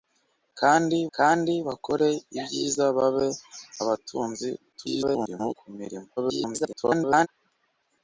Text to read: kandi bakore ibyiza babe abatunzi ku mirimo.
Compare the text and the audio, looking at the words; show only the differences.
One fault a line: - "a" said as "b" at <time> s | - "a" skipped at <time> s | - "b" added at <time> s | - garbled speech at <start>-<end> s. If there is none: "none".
- "kandi" added at 1.2 s
- garbled speech at 4.7-5.5 s
- garbled speech at 6.2-7.3 s